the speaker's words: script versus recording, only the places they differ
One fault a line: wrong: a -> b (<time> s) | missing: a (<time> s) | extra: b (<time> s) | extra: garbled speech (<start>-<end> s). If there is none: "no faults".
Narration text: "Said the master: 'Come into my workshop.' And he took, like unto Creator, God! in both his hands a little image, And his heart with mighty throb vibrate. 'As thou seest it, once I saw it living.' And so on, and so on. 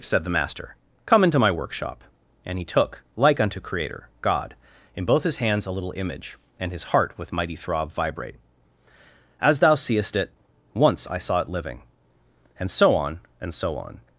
no faults